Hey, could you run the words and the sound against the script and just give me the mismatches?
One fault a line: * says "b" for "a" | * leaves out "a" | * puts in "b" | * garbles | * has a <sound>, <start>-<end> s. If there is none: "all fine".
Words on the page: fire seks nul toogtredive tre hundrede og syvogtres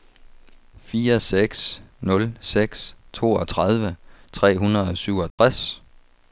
* puts in "seks"
* has a dropout, 5.3-5.4 s